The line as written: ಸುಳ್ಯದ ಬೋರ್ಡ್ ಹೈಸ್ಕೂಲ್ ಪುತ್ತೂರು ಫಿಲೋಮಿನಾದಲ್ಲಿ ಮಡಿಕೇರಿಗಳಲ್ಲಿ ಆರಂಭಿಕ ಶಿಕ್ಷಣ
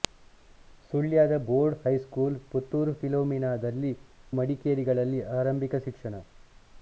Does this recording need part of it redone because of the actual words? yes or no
no